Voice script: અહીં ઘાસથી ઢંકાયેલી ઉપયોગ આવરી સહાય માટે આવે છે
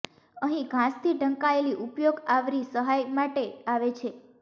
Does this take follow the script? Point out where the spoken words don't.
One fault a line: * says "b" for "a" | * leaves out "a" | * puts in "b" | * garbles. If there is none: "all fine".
all fine